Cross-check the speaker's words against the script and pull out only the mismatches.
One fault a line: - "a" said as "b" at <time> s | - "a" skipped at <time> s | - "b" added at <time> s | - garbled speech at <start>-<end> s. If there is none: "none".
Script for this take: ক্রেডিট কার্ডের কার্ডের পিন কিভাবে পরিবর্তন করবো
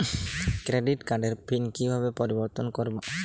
- "কার্ডের" skipped at 1.3 s